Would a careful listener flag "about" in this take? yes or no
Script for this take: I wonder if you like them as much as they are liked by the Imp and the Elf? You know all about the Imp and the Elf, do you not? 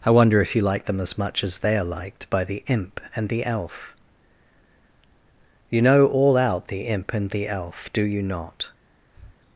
yes